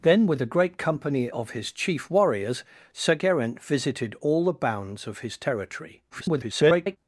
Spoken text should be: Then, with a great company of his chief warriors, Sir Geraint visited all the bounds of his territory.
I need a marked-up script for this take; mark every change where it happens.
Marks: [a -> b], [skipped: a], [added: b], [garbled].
Then, with a great company of his chief warriors, Sir Geraint visited all the bounds of his territory. [garbled]